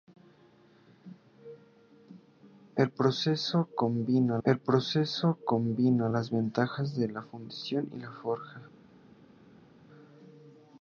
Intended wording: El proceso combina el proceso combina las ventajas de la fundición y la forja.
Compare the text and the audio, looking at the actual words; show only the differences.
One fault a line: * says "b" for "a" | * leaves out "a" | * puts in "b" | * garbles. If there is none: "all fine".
all fine